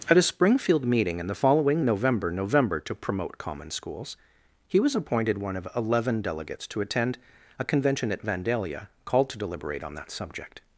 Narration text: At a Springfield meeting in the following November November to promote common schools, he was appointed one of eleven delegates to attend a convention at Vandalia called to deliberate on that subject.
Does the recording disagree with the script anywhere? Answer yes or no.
no